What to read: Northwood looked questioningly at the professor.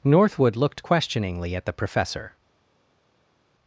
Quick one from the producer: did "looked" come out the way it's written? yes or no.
yes